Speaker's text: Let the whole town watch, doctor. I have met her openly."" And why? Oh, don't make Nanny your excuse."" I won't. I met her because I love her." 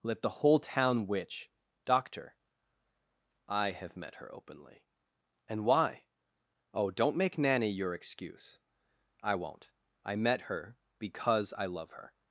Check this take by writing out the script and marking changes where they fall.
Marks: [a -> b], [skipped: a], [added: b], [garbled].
Let the whole town [watch, -> witch] doctor. I have met her openly."" And why? Oh, don't make Nanny your excuse."" I won't. I met her because I love her."